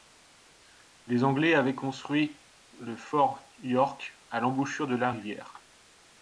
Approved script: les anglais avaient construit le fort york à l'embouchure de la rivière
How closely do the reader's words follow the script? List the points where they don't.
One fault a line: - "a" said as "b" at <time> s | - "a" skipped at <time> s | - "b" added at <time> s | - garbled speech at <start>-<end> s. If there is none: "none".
none